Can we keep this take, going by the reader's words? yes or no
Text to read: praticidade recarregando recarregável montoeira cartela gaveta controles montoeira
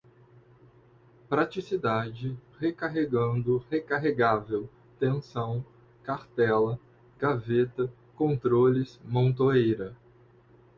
no